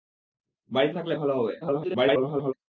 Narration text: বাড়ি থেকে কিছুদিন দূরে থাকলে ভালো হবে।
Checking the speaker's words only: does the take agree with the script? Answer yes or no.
no